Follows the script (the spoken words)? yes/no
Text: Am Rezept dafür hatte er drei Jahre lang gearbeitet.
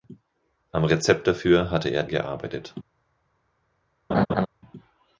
no